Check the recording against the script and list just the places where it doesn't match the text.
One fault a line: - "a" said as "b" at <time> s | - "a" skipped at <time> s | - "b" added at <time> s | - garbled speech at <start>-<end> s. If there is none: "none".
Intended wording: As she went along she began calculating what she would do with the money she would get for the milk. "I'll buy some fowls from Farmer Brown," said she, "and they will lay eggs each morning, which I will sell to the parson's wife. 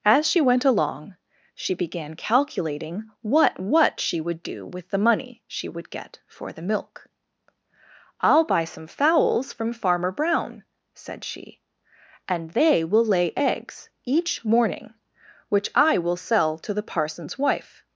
- "what" added at 3.6 s